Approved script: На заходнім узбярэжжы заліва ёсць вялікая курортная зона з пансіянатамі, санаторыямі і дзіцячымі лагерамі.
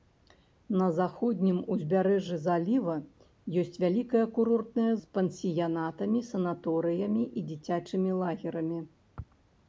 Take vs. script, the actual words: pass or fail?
fail